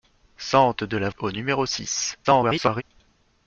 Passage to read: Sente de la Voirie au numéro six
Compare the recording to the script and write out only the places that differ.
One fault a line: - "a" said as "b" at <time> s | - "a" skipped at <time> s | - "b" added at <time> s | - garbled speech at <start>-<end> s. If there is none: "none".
- "Voirie" skipped at 1.1 s
- garbled speech at 2.2-2.8 s